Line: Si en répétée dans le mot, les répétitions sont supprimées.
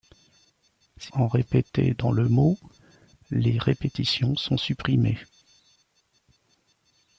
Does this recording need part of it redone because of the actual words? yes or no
no